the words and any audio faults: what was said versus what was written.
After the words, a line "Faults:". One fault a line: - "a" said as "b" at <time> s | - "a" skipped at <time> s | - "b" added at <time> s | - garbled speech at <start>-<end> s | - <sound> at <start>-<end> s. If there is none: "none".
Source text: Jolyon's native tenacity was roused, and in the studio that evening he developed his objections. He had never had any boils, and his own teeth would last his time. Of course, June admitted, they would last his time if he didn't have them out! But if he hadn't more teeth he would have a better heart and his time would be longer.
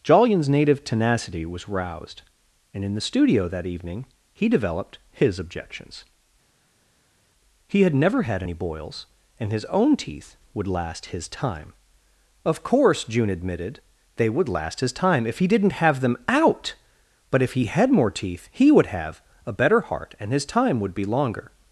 Jolyon's native tenacity was roused, and in the studio that evening he developed his objections. He had never had any boils, and his own teeth would last his time. Of course, June admitted, they would last his time if he didn't have them out! But if he had more teeth he would have a better heart and his time would be longer.
Faults:
- "hadn't" said as "had" at 17.7 s